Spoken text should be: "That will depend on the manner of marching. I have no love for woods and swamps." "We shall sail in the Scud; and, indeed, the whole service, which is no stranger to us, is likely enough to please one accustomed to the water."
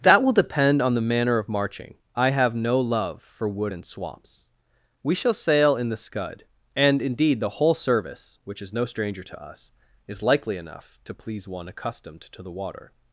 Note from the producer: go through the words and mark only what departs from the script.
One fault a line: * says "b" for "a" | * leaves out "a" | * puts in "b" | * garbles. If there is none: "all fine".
* says "wood" for "woods"